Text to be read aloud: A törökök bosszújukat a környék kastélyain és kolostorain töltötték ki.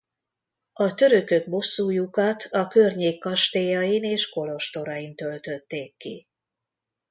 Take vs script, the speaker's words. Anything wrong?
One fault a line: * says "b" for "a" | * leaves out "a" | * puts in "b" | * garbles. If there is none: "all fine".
all fine